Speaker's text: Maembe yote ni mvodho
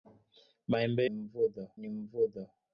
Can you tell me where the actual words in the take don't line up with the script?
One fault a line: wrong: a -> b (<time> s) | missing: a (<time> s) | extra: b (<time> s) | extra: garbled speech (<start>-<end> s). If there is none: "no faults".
wrong: yote -> mvodho (1.1 s)